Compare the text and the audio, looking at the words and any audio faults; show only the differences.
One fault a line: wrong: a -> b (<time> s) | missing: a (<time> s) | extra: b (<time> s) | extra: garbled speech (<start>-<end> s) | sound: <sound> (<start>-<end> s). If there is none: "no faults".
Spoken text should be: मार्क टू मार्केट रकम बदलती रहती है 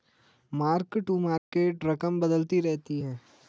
sound: dropout (1.4-1.5 s)